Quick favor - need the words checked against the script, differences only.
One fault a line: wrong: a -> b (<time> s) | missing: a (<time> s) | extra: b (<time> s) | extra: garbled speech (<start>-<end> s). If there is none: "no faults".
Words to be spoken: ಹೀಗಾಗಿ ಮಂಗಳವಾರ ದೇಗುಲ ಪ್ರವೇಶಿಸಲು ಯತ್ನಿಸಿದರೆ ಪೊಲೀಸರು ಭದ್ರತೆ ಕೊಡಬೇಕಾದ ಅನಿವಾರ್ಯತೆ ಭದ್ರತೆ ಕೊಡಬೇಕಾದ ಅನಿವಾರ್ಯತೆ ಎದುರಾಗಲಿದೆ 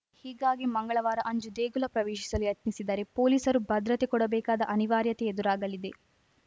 extra: ಅಂಜು (1.3 s)
missing: ಭದ್ರತೆ ಕೊಡಬೇಕಾದ ಅನಿವಾರ್ಯತೆ (5.3 s)